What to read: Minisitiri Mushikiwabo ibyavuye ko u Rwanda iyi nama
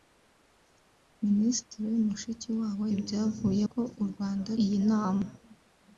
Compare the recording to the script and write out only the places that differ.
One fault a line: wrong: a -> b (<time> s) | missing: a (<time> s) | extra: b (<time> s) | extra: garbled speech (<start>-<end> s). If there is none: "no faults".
no faults